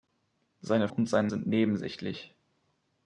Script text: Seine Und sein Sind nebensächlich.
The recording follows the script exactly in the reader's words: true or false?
true